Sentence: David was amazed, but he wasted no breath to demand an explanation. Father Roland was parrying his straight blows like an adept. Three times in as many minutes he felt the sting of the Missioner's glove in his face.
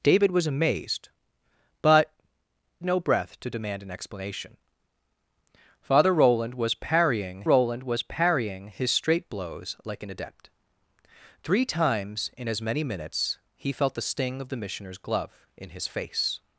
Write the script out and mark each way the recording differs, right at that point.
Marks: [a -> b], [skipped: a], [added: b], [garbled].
David was amazed, but [skipped: he wasted] no breath to demand an explanation. Father Roland was parrying [added: Roland was parrying] his straight blows like an adept. Three times in as many minutes he felt the sting of the Missioner's glove in his face.